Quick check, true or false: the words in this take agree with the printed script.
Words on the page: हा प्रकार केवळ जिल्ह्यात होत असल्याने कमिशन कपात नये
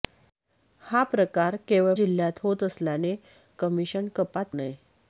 true